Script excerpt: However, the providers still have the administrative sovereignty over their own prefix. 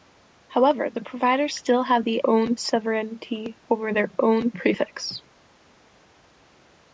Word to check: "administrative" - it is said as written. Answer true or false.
false